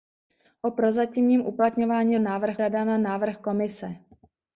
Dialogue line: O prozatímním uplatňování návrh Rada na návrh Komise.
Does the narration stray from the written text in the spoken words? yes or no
no